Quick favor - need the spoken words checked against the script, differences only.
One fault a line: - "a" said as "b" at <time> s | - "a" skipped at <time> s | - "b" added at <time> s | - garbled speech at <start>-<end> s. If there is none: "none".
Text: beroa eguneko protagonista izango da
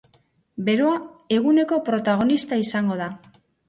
none